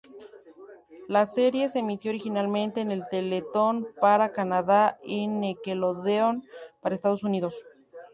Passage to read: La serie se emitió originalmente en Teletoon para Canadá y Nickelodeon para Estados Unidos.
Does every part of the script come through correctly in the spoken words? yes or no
yes